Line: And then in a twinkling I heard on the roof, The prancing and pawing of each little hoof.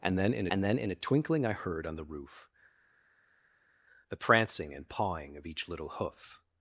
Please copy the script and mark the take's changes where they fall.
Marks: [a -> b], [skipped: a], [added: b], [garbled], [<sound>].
And then in [added: and then in] a twinkling I heard on the roof, The prancing and pawing of each little hoof.